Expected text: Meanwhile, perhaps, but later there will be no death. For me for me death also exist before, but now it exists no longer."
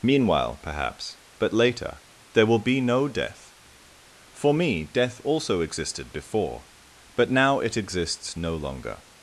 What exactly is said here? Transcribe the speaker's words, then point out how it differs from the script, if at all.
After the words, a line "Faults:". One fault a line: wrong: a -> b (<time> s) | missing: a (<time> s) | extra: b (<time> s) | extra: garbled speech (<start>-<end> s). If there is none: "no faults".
Meanwhile, perhaps, but later there will be no death. For me death also existed before, but now it exists no longer."
Faults:
missing: for me (4.8 s)
wrong: exist -> existed (5.6 s)